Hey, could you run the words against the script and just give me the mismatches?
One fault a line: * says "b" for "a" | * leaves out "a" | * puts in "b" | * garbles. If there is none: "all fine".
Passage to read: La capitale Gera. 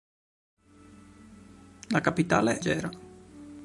all fine